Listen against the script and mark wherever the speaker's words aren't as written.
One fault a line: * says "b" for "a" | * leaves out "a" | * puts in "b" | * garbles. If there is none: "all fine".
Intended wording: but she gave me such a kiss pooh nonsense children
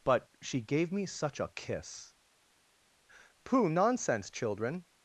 all fine